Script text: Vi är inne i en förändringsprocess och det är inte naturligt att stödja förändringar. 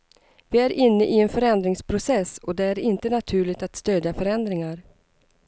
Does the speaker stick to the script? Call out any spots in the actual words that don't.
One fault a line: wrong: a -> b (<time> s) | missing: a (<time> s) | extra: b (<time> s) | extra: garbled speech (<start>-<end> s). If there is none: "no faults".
no faults